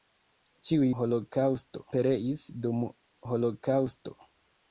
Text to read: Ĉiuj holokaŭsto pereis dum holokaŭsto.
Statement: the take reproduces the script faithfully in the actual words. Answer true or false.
true